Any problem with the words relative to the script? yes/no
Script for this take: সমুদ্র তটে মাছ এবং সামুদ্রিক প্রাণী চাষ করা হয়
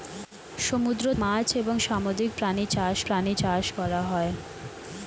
yes